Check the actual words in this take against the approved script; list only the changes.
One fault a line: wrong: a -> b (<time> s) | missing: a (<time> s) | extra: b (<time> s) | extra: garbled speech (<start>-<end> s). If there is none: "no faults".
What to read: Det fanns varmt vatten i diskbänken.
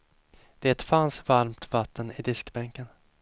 no faults